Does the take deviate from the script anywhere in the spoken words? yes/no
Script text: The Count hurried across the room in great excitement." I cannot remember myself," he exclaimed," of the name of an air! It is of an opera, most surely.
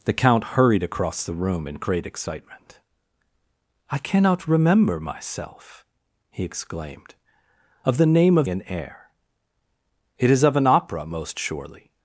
no